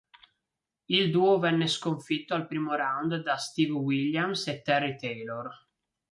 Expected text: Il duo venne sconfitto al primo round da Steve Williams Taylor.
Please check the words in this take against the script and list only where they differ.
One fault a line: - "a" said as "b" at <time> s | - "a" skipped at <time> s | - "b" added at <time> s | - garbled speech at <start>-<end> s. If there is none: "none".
- "e Terry" added at 4.5 s